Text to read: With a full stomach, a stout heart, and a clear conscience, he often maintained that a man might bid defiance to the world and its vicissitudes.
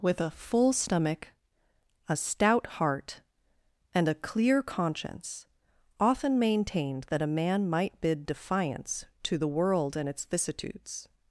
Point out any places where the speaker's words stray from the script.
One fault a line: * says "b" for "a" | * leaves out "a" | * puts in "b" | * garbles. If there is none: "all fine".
* leaves out "he"